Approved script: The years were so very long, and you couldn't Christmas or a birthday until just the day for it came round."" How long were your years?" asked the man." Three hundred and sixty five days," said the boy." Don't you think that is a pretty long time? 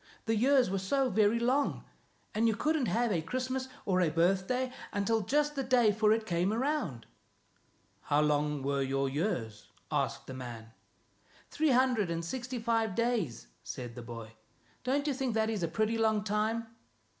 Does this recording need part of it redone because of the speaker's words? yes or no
yes